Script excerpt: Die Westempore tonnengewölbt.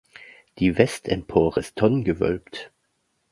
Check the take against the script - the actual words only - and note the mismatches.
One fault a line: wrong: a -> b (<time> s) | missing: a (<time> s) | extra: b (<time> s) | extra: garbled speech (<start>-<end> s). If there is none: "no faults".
extra: ist (1.6 s)